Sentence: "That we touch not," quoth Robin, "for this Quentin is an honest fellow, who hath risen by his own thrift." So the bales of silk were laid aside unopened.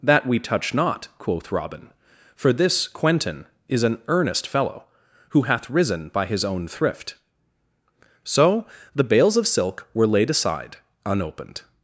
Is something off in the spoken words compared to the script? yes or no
yes